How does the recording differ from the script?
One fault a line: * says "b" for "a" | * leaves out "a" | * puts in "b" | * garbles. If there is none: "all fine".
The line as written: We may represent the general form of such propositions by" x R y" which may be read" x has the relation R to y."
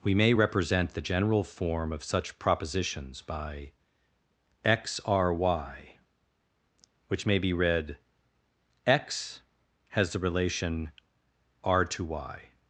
all fine